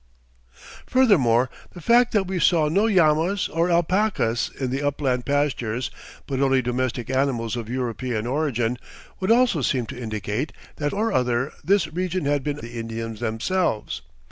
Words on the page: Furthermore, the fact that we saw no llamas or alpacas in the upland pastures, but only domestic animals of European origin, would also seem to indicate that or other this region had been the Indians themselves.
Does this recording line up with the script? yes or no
yes